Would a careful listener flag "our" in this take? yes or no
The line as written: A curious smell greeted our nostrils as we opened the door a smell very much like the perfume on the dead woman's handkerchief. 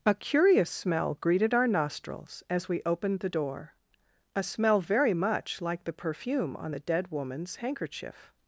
no